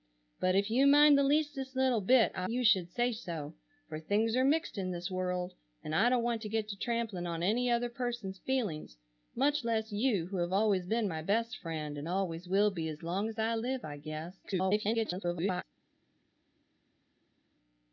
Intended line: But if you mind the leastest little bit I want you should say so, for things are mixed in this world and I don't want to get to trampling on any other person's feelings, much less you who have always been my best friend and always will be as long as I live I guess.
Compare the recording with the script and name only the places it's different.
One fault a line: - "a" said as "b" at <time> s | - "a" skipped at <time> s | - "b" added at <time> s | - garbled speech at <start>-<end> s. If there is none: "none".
- "want" skipped at 2.5 s
- garbled speech at 14.4-15.6 s